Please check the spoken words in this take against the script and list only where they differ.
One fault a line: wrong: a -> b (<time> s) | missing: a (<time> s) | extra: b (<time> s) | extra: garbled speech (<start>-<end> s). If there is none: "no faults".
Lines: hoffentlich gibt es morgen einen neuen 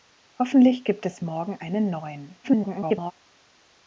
extra: garbled speech (2.4-3.1 s)